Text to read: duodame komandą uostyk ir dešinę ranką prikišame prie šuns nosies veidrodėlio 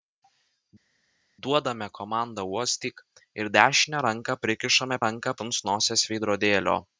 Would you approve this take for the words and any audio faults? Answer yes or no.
no